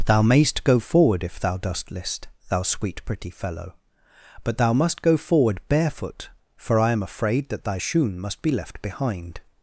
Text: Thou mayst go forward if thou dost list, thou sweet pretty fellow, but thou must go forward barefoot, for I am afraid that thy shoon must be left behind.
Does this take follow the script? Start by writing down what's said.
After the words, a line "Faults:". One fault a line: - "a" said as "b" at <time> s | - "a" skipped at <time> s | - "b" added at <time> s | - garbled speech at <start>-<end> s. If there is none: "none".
Thou mayst go forward if thou dost list, thou sweet pretty fellow, but thou must go forward barefoot, for I am afraid that thy shoon must be left behind.
Faults:
none